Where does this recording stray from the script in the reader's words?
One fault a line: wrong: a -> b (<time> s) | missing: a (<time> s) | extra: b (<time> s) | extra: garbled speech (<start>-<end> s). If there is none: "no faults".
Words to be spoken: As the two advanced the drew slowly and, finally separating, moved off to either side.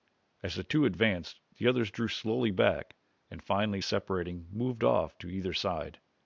extra: others (1.7 s)
extra: back (2.5 s)